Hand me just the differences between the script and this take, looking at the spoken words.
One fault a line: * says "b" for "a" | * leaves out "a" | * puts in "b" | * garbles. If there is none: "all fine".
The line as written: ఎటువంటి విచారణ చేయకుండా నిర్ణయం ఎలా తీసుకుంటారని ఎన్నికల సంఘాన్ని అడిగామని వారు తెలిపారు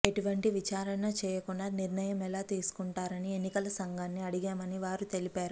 all fine